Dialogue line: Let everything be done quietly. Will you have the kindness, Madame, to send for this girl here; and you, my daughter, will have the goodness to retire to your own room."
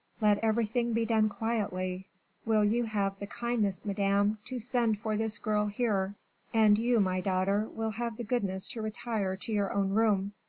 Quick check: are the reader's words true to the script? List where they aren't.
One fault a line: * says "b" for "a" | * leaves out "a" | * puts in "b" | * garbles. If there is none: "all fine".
all fine